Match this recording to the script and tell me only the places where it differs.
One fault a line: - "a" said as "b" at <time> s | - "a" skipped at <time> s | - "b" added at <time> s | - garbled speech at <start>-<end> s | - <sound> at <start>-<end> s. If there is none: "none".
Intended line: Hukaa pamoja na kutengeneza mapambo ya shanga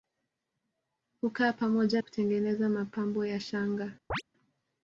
- "na" skipped at 2.0 s
- chirp at 4.1-4.2 s